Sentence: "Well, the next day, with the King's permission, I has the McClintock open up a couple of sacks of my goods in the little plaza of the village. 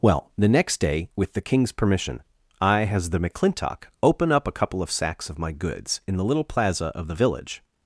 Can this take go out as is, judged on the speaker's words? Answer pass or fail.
pass